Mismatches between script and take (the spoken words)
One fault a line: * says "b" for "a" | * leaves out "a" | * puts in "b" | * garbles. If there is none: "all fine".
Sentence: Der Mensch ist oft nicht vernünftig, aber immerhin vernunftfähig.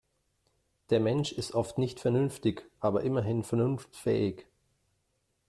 all fine